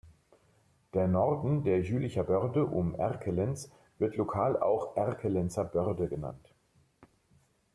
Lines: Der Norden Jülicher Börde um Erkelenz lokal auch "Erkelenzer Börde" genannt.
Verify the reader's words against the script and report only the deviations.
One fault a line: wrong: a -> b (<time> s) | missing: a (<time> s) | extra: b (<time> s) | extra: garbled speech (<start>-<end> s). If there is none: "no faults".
extra: der (1.6 s)
extra: wird (4.0 s)